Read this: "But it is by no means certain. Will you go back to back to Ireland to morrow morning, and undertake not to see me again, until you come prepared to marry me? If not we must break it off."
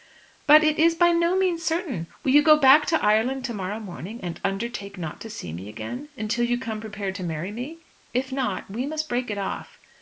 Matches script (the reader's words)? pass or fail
fail